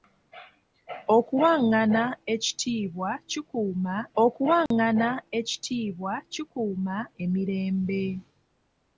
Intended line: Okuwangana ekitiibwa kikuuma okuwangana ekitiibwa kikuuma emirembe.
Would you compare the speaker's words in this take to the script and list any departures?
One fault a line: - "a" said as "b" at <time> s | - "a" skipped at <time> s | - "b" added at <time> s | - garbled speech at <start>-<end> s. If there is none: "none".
none